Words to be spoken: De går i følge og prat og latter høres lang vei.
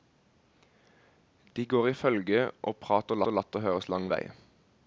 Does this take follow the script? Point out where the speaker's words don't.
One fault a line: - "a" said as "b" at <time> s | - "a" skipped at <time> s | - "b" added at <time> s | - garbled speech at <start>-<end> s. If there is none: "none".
- "og" added at 3.3 s